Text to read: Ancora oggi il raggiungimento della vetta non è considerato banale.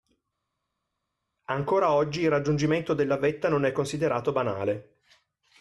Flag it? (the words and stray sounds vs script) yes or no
no